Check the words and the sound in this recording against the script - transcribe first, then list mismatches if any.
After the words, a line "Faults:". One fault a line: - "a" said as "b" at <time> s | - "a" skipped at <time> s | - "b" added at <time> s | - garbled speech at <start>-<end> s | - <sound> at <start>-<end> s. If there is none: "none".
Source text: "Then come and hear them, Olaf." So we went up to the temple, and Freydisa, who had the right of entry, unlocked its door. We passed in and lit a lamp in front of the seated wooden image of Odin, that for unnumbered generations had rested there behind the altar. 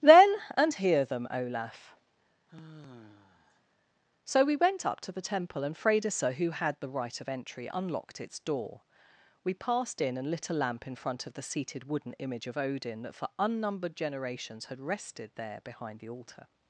"Then and hear them, Olaf." So we went up to the temple, and Freydisa, who had the right of entry, unlocked its door. We passed in and lit a lamp in front of the seated wooden image of Odin, that for unnumbered generations had rested there behind the altar.
Faults:
- "come" skipped at 0.4 s
- sigh at 2.5-3.6 s